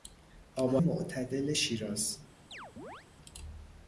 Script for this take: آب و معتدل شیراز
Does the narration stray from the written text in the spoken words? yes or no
no